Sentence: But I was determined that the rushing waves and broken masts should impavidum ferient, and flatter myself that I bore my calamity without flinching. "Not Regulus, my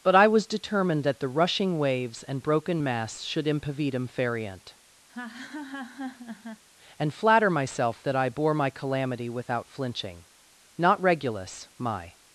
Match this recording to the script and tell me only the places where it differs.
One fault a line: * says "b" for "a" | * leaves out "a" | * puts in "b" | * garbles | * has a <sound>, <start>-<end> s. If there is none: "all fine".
* has a laugh, 5.1-6.6 s